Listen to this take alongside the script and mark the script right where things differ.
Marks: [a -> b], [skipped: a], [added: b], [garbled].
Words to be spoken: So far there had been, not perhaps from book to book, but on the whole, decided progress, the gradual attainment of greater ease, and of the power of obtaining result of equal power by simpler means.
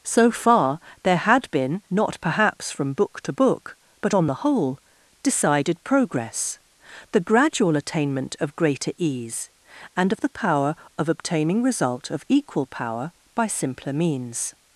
So far there had been, not perhaps from book to book, but on the whole, decided progress, the gradual attainment of greater ease, and of the power of obtaining result of equal power by simpler means.